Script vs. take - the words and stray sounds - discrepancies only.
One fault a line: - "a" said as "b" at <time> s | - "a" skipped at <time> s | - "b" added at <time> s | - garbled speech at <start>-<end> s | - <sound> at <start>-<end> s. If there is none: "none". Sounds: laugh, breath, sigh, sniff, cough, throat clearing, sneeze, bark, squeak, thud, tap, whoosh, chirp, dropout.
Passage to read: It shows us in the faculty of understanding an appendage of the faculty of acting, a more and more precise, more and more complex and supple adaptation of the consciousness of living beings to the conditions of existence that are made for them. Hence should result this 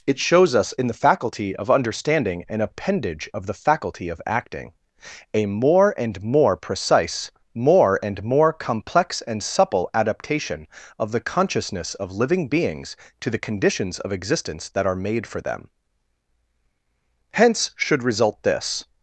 none